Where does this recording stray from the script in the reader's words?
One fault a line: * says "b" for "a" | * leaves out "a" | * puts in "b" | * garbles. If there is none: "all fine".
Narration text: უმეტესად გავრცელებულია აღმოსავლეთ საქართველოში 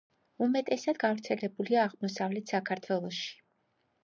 all fine